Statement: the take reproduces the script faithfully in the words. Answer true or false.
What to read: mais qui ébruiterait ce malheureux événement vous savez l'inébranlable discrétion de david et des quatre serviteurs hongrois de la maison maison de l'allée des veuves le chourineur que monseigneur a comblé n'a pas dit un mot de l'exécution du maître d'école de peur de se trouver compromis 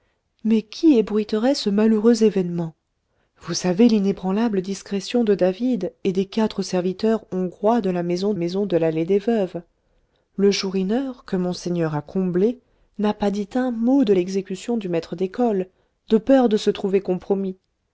true